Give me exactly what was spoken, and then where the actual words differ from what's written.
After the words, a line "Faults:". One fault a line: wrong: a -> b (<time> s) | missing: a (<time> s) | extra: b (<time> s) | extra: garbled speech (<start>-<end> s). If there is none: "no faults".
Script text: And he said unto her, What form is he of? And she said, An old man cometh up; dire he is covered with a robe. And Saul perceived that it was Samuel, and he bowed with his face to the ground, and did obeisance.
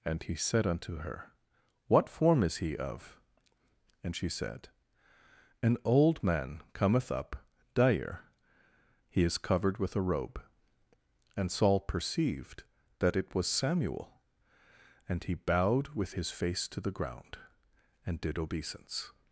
And he said unto her, What form is he of? And she said, An old man cometh up; dire he is covered with a robe. And Saul perceived that it was Samuel, and he bowed with his face to the ground, and did obeisance.
Faults:
no faults